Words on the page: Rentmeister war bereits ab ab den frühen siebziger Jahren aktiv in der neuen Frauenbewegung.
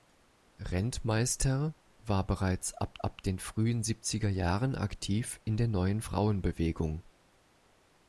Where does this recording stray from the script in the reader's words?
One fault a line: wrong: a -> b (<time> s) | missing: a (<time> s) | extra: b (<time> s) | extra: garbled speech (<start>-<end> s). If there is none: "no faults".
no faults